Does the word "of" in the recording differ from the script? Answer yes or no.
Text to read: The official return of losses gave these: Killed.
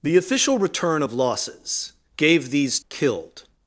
no